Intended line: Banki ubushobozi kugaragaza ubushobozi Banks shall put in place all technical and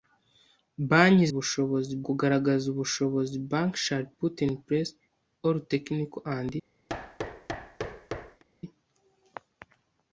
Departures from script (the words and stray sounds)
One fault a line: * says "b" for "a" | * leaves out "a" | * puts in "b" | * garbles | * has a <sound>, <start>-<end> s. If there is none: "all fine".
* has a thud, 6.9-8.4 s